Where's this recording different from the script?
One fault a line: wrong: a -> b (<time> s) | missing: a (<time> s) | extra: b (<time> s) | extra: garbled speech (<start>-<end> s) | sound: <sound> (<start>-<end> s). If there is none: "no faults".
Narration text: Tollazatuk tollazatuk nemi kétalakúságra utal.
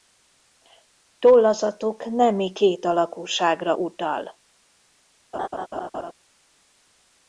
missing: tollazatuk (2.0 s)
sound: laugh (5.3-6.1 s)